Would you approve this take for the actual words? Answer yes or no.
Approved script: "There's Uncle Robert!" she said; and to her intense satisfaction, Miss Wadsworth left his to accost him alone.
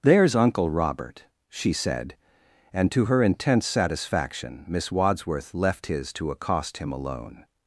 yes